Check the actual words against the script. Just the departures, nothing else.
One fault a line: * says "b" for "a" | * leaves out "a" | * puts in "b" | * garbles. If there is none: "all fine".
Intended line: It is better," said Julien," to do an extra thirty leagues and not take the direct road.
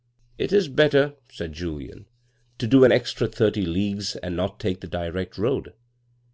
all fine